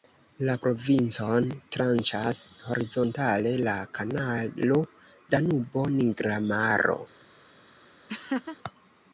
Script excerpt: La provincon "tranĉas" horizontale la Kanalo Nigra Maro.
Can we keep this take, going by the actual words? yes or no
no